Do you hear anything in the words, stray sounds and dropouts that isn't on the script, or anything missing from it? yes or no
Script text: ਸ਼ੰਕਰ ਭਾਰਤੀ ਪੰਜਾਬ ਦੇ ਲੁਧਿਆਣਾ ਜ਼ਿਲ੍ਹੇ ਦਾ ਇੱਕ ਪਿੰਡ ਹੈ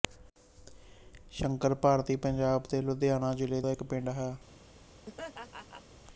yes